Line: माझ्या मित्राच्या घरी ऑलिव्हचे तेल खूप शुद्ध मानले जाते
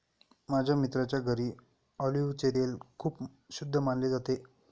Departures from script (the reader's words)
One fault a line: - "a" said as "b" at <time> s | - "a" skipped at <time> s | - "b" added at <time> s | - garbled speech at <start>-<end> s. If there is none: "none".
none